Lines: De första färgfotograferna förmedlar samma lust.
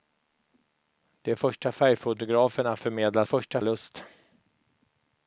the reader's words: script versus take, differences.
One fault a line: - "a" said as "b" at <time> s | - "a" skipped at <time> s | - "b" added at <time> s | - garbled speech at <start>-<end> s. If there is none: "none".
- "samma" said as "första" at 3.2 s